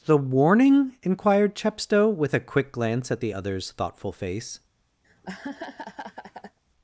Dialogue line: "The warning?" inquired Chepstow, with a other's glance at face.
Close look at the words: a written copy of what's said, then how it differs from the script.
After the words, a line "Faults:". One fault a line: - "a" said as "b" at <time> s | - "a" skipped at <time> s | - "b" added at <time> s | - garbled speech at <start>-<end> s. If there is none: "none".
"The warning?" inquired Chepstow, with a quick glance at the other's thoughtful face.
Faults:
- "other's" said as "quick" at 2.4 s
- "the other's thoughtful" added at 3.2 s